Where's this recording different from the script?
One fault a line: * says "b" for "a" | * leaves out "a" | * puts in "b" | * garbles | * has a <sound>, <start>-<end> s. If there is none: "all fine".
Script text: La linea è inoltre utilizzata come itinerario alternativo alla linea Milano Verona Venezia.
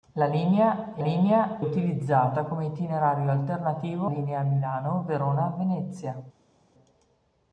* says "linea" for "inoltre"
* leaves out "alla"